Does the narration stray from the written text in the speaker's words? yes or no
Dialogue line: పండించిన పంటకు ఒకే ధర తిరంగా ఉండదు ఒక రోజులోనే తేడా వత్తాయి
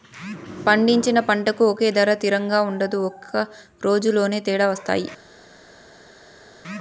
no